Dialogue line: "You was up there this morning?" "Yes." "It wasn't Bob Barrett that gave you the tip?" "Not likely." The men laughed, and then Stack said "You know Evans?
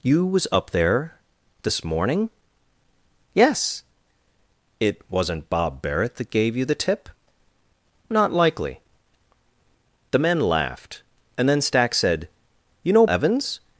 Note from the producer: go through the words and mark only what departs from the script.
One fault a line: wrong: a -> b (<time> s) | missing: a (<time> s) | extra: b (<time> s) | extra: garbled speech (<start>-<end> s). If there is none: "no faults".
no faults